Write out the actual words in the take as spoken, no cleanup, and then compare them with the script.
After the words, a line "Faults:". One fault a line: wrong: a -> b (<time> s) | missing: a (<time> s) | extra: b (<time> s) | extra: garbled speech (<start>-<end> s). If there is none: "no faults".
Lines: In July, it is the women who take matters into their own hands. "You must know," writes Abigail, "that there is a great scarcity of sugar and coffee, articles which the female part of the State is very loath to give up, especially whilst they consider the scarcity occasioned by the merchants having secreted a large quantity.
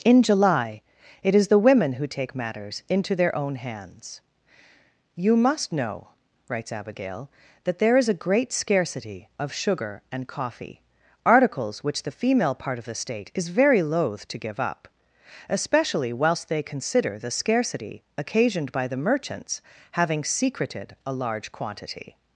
In July, it is the women who take matters into their own hands. "You must know," writes Abigail, "that there is a great scarcity of sugar and coffee, articles which the female part of the State is very loath to give up, especially whilst they consider the scarcity occasioned by the merchants having secreted a large quantity.
Faults:
no faults